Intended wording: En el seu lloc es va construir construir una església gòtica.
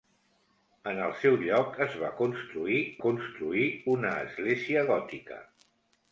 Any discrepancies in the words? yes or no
no